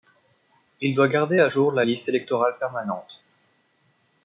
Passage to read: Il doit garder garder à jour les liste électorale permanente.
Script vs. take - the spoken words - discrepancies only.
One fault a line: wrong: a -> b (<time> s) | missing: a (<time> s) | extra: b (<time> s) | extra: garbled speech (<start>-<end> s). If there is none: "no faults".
missing: garder (1.4 s)
wrong: les -> la (1.7 s)